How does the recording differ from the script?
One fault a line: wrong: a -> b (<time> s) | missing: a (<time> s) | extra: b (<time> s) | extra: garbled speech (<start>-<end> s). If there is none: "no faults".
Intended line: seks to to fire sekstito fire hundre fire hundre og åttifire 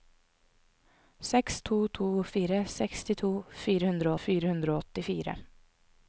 no faults